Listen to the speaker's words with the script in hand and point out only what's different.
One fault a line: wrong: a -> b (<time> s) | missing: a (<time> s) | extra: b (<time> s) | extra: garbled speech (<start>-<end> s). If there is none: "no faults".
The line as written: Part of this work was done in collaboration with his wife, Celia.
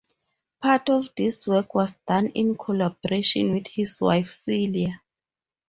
no faults